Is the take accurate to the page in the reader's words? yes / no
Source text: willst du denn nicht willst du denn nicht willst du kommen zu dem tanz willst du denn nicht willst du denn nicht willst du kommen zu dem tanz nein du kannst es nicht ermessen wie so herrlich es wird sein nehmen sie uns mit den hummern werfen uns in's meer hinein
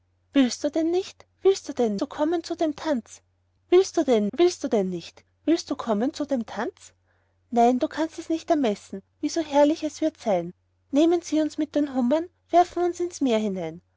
no